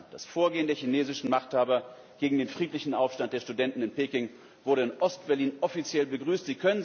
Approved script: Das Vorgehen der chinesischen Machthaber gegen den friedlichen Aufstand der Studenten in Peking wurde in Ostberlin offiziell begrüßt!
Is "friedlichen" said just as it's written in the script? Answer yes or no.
yes